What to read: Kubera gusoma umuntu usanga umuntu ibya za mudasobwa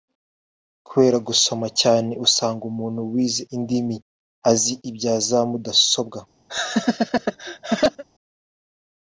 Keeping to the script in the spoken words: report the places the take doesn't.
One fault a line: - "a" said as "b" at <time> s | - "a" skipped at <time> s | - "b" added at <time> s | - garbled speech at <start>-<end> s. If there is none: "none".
- "umuntu" said as "cyane" at 1.8 s
- "wize indimi azi" added at 3.1 s